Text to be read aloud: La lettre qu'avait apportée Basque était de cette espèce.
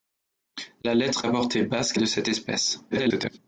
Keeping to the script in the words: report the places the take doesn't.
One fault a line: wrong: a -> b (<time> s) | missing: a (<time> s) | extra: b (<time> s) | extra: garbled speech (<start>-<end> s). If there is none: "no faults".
missing: qu'avait (1.2 s)
missing: était (2.0 s)
extra: garbled speech (2.9-3.4 s)